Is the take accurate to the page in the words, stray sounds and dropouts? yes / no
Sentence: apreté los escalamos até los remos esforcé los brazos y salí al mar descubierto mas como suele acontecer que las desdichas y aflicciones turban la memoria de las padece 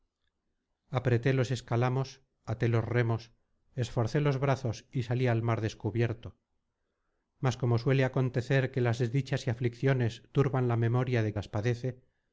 yes